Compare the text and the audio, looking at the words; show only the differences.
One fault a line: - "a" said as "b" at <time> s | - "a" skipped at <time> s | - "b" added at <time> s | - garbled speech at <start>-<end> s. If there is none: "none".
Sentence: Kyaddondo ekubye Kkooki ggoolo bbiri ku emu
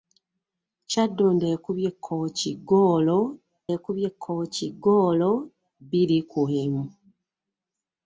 - "ekubye Kkooki ggoolo" added at 3.8 s